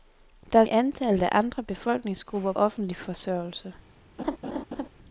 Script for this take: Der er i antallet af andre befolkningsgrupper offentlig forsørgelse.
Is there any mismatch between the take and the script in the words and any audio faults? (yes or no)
yes